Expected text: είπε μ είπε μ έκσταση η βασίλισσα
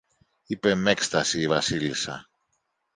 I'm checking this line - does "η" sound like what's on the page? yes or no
yes